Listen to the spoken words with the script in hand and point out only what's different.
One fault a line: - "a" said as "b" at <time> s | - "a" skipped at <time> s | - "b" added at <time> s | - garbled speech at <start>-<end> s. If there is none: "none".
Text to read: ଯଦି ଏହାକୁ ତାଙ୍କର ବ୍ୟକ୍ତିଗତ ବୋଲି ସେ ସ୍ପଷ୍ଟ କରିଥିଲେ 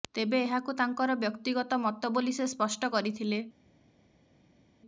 - "ଯଦି" said as "ତେବେ" at 0.1 s
- "ମତ" added at 1.8 s